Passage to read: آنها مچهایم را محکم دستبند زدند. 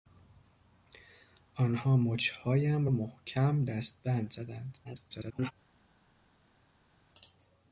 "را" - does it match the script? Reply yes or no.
no